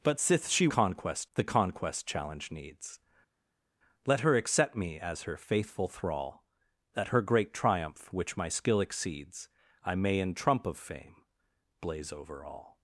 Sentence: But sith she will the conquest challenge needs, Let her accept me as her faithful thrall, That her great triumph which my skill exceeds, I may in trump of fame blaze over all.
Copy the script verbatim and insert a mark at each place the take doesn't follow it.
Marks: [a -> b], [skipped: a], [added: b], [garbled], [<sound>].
But sith she [will -> conquest] the conquest challenge needs, Let her accept me as her faithful thrall, That her great triumph which my skill exceeds, I may in trump of fame blaze over all.